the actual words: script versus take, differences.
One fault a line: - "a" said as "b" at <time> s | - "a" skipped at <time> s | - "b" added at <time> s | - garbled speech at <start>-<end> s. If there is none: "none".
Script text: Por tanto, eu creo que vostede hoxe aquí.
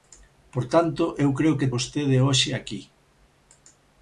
none